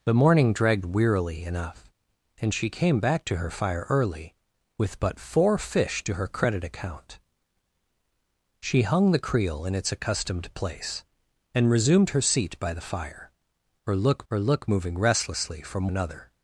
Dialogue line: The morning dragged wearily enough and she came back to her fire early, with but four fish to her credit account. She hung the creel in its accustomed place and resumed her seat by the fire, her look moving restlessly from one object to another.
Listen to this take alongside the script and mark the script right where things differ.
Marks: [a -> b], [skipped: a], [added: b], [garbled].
The morning dragged wearily enough and she came back to her fire early, with but four fish to her credit account. She hung the creel in its accustomed place and resumed her seat by the fire, her look [added: her look] moving restlessly from [skipped: one object to] another.